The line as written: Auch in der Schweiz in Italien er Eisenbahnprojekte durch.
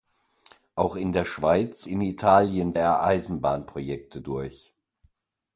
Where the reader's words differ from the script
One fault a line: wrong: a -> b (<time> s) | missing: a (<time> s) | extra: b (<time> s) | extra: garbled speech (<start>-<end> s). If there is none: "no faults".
no faults